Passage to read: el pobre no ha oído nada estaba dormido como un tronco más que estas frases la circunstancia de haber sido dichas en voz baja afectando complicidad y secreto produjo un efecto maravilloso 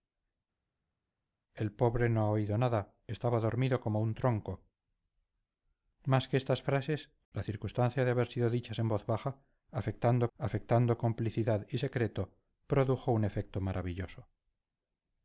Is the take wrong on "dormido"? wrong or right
right